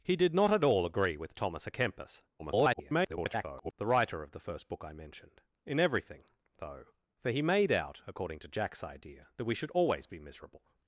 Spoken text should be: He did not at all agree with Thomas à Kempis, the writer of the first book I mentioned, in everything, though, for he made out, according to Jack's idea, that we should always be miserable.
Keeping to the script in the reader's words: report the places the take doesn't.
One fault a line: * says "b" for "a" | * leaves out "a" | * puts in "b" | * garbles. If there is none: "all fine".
* garbles